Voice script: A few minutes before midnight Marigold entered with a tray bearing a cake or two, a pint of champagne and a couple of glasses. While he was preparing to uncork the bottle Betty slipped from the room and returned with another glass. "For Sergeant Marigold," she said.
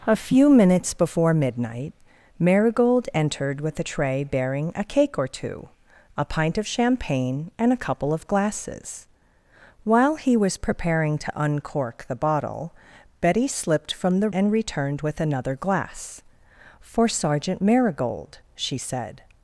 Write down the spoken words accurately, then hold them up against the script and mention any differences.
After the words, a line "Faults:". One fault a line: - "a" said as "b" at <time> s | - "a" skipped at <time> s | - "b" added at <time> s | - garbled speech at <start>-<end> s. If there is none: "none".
A few minutes before midnight Marigold entered with a tray bearing a cake or two, a pint of champagne and a couple of glasses. While he was preparing to uncork the bottle Betty slipped from the and returned with another glass. "For Sergeant Marigold," she said.
Faults:
- "room" skipped at 14.3 s